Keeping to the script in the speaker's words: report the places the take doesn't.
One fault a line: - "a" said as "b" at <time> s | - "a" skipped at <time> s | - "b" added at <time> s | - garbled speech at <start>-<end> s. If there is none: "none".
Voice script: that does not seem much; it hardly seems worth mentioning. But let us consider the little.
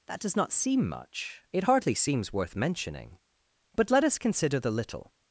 none